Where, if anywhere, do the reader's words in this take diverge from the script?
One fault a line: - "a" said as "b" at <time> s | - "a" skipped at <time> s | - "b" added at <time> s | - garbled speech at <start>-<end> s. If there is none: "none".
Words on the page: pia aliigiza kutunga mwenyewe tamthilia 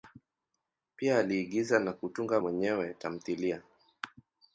- "na" added at 1.8 s